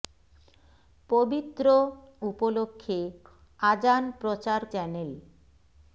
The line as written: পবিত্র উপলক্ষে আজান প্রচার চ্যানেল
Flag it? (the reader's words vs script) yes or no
no